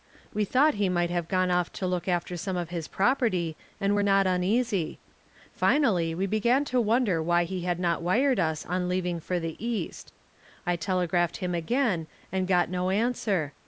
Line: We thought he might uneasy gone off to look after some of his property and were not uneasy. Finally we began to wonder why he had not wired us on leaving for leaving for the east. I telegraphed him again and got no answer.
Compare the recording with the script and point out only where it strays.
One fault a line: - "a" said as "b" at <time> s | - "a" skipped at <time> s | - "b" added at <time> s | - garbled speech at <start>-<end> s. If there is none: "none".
- "uneasy" said as "have" at 1.1 s
- "leaving for" skipped at 9.4 s